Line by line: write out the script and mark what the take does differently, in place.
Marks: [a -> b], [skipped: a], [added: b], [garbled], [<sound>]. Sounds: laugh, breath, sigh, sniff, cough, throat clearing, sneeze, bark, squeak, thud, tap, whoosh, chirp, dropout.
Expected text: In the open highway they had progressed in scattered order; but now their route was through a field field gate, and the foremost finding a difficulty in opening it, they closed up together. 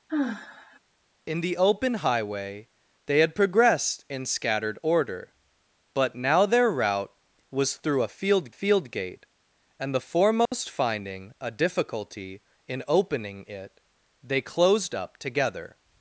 [sigh] In the open highway they had progressed in scattered order; but now their route was through a field field gate, and the foremost [dropout] finding a difficulty in opening it, they closed up together.